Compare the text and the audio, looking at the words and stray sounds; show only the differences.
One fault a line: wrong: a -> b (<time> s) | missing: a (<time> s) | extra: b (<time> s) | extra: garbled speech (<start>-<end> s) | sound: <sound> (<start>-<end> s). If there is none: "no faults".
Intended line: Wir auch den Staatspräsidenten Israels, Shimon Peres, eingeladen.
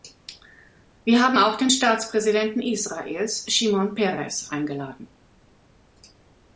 extra: haben (1.2 s)